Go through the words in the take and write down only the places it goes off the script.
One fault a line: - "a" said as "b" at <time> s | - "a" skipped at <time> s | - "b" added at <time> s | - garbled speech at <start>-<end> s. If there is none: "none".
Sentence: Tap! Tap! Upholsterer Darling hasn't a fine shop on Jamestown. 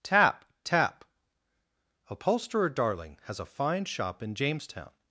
- "hasn't" said as "has" at 3.2 s
- "on" said as "in" at 4.2 s